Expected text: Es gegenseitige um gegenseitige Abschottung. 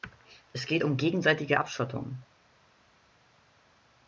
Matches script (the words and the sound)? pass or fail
fail